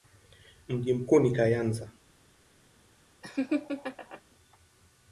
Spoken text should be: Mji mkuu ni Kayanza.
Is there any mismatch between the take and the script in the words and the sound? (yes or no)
yes